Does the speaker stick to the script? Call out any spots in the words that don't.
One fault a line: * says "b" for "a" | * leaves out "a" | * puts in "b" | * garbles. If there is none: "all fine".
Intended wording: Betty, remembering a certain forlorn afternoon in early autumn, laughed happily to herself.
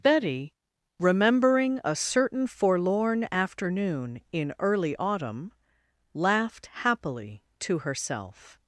all fine